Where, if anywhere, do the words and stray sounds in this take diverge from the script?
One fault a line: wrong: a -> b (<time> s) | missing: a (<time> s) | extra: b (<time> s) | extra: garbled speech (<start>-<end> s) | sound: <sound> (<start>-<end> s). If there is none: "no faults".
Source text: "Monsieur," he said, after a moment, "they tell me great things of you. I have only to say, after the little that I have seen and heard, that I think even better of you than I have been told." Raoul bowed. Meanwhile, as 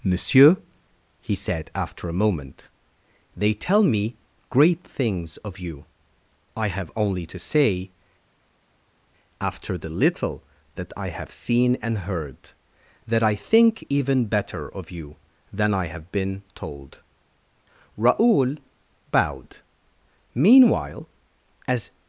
no faults